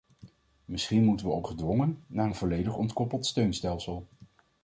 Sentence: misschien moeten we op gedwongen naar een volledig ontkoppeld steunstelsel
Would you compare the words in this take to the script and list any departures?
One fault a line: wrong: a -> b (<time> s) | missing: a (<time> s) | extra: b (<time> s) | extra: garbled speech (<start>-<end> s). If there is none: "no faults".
no faults